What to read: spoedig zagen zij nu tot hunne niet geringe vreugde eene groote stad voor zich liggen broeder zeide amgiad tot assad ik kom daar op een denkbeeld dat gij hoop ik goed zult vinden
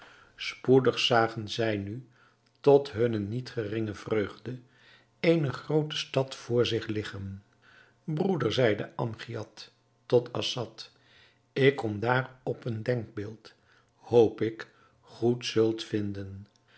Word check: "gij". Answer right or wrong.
wrong